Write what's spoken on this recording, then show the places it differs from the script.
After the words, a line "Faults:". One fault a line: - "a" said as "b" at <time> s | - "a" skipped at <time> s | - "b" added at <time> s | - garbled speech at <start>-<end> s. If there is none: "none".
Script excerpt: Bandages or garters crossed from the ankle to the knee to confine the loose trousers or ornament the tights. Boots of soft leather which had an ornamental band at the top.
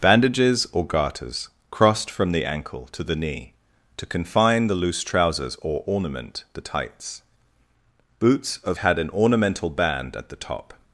Bandages or garters crossed from the ankle to the knee to confine the loose trousers or ornament the tights. Boots of had an ornamental band at the top.
Faults:
- "soft leather which" skipped at 8.8 s